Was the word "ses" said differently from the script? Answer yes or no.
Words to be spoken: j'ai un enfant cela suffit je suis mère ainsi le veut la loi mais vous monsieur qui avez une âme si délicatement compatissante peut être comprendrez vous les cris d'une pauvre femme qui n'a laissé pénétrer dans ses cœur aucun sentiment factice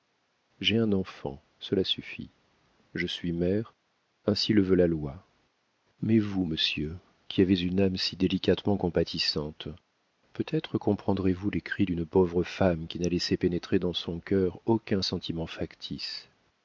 yes